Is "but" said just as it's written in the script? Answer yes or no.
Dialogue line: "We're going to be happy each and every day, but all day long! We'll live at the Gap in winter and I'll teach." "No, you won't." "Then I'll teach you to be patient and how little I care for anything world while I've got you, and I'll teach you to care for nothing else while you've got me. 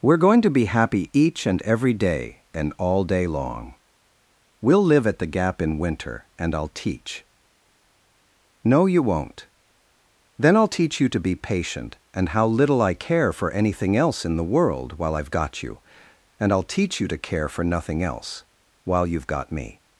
no